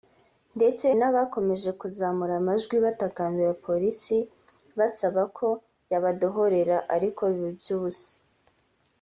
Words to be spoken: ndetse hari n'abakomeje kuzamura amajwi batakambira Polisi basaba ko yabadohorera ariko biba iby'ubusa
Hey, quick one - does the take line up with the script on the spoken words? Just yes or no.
no